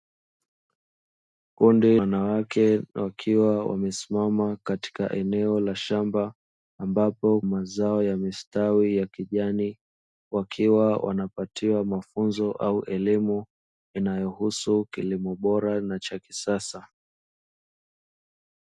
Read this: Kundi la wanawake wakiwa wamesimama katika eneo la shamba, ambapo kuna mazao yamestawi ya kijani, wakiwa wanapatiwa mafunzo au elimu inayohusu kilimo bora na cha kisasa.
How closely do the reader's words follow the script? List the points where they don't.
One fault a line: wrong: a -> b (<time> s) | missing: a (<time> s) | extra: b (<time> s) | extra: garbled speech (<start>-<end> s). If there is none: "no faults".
missing: la (2.0 s)
missing: kuna (7.4 s)